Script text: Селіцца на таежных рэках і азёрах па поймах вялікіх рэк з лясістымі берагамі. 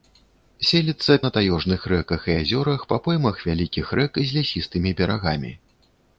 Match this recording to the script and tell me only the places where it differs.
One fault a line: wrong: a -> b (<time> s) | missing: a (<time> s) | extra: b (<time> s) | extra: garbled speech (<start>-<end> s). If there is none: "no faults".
no faults